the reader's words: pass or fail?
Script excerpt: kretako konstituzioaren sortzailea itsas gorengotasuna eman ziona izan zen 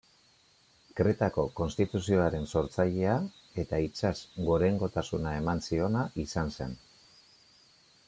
fail